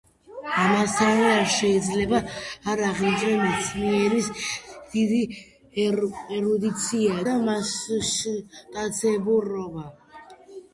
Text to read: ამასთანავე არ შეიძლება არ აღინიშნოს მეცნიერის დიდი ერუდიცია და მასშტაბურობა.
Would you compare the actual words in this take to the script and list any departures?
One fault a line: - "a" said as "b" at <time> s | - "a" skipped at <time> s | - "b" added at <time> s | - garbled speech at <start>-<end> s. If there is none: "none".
none